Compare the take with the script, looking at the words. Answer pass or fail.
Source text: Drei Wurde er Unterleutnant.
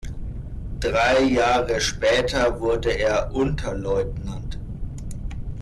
fail